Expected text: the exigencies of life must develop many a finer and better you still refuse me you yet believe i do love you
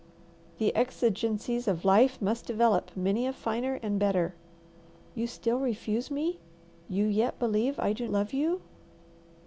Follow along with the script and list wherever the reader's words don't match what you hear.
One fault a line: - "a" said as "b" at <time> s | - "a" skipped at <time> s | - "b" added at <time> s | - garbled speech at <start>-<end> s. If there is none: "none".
none